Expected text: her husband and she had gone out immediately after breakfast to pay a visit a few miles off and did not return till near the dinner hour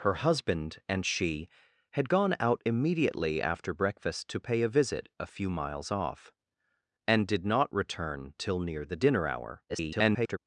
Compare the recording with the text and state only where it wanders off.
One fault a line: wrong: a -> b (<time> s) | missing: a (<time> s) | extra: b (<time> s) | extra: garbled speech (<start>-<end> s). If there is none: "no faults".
extra: garbled speech (9.7-10.4 s)